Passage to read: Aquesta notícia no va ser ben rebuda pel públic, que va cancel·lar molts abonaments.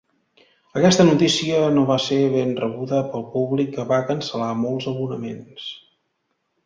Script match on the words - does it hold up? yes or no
yes